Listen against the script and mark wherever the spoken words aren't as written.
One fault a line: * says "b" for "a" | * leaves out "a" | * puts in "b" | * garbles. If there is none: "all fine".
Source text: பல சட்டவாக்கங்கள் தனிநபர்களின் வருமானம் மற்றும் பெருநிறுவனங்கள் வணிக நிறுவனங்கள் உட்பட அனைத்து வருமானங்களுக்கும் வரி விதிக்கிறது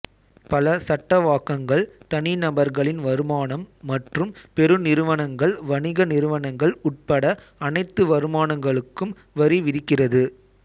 all fine